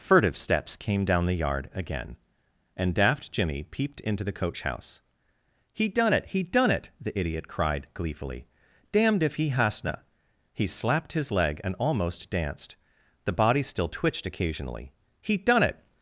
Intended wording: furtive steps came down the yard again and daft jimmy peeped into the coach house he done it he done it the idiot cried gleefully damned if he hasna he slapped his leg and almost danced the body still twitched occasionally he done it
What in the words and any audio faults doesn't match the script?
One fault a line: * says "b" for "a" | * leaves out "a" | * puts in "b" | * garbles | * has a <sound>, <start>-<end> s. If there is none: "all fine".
all fine